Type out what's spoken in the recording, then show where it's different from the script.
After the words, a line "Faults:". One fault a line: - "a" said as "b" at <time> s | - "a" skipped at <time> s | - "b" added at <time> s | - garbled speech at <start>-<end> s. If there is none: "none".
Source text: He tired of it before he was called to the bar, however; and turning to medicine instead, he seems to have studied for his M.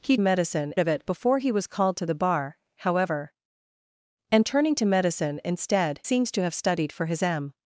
He medicine of it before he was called to the bar, however; and turning to medicine instead, seems to have studied for his M.
Faults:
- "tired" said as "medicine" at 0.2 s
- "he" skipped at 6.0 s